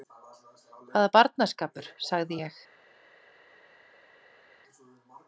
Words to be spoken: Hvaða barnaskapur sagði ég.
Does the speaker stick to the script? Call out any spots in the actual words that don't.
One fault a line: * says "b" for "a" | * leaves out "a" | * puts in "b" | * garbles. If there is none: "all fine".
all fine